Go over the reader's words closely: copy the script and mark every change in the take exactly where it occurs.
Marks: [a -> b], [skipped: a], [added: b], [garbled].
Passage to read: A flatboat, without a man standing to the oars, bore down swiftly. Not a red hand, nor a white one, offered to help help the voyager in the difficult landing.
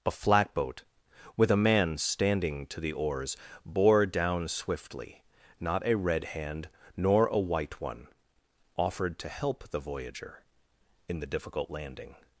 A flatboat, [without -> with] a man standing to the oars, bore down swiftly. Not a red hand, nor a white one, offered to help [skipped: help] the voyager in the difficult landing.